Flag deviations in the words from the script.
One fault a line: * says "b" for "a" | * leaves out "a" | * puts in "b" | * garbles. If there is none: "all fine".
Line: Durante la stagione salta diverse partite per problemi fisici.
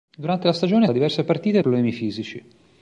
* leaves out "salta"
* leaves out "per"